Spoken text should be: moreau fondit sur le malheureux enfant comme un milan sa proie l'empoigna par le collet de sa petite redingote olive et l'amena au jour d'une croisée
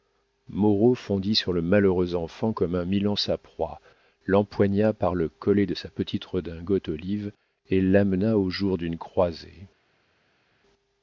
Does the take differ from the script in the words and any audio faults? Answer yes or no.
no